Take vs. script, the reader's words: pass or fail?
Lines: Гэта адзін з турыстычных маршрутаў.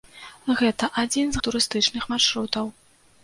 pass